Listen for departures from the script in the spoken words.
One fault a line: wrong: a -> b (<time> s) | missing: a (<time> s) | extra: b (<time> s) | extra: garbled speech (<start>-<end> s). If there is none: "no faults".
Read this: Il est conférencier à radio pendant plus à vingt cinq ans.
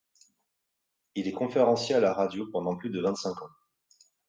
extra: la (2.0 s)
wrong: à -> de (2.9 s)